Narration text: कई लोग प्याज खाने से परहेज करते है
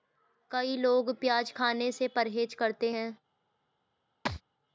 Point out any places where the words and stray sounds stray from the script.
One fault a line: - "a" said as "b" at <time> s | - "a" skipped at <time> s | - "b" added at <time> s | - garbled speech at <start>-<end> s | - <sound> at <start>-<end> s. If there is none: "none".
- thud at 4.3-4.4 s